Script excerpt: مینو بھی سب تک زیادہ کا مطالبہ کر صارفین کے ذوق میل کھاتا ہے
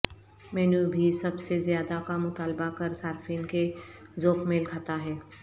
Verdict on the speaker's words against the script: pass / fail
fail